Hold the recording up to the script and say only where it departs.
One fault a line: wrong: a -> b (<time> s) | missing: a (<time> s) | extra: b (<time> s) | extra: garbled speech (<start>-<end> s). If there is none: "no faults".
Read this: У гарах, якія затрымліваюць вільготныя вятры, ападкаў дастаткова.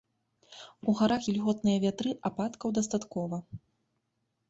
missing: якія затрымліваюць (1.3 s)